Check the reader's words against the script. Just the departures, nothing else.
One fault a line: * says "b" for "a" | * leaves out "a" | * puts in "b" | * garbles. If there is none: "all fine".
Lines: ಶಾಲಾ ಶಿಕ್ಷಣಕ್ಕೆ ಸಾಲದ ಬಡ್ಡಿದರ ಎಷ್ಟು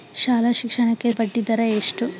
* leaves out "ಸಾಲದ"